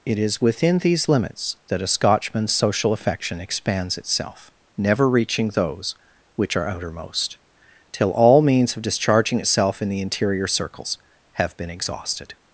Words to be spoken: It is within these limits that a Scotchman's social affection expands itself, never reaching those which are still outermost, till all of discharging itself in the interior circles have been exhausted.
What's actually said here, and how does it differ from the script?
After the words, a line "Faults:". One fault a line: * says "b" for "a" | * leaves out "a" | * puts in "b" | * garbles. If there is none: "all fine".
It is within these limits that a Scotchman's social affection expands itself, never reaching those which are outermost, till all means of discharging itself in the interior circles have been exhausted.
Faults:
* leaves out "still"
* puts in "means"